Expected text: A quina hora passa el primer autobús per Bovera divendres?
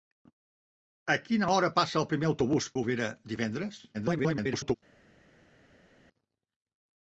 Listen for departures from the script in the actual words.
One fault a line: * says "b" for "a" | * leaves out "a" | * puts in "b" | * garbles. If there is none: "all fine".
* leaves out "per"
* garbles